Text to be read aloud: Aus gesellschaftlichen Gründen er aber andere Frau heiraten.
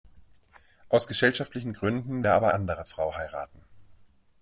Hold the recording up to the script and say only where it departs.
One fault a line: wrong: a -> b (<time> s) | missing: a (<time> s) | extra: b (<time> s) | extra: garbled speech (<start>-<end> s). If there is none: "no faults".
no faults